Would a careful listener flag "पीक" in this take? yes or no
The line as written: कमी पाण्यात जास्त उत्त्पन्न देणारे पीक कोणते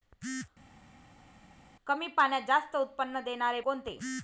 yes